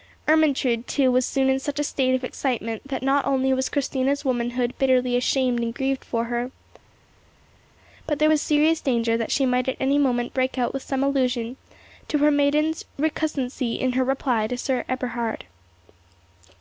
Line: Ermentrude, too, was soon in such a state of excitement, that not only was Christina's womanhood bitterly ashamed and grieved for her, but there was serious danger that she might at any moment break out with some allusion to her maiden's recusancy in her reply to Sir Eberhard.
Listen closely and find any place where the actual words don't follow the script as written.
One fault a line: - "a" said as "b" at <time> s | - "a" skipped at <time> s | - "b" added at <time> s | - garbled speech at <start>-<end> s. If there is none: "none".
none